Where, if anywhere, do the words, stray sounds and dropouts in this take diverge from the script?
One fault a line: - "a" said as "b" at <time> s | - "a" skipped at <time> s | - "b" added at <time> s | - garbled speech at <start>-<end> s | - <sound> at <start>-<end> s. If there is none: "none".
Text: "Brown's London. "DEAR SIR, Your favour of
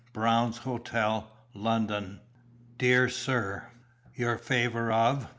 - "Hotel" added at 0.6 s